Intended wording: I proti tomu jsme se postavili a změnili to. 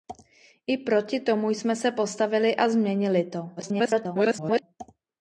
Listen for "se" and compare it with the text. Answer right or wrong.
right